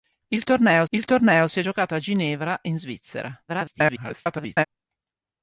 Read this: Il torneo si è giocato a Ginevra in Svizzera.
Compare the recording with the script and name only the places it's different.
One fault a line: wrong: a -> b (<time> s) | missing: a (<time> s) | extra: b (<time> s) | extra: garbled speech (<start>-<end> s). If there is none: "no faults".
extra: il torneo (0.9 s)
extra: garbled speech (3.5-4.6 s)